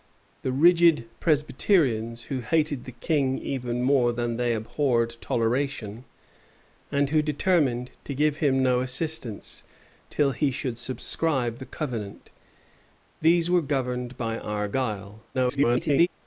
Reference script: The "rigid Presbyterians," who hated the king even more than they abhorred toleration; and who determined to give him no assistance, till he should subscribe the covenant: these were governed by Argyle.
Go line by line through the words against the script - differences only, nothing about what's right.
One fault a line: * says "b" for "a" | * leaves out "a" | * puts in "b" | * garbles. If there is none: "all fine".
* garbles